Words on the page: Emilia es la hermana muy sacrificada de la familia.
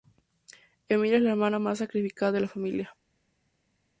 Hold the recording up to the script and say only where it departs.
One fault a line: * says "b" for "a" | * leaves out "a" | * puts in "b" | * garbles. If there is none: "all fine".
* says "más" for "muy"